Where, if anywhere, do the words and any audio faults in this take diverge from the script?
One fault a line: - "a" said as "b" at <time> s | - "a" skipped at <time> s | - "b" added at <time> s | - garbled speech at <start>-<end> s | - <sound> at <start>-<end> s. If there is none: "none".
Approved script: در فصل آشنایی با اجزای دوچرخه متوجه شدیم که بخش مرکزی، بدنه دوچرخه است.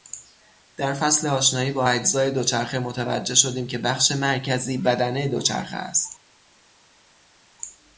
none